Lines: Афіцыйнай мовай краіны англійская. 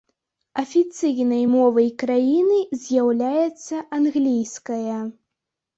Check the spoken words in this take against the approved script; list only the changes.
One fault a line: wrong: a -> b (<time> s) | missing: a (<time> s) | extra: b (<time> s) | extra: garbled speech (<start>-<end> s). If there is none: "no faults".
extra: з'яўляецца (2.9 s)